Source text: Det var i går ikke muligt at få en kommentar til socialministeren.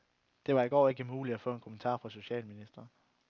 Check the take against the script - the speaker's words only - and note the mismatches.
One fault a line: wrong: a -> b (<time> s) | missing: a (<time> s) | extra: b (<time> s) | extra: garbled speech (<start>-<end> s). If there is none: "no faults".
wrong: til -> fra (2.0 s)